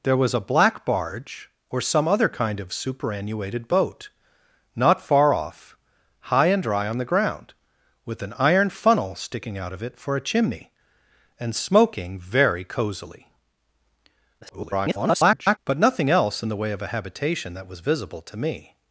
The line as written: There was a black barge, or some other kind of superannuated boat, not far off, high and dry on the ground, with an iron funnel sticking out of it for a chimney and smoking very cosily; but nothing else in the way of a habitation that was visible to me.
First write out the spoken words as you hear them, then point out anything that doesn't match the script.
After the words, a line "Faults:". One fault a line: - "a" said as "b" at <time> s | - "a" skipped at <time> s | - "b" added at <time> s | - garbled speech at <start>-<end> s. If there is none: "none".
There was a black barge, or some other kind of superannuated boat, not far off, high and dry on the ground, with an iron funnel sticking out of it for a chimney and smoking very cosily; [garbled] but nothing else in the way of a habitation that was visible to me.
Faults:
- garbled speech at 14.4-15.6 s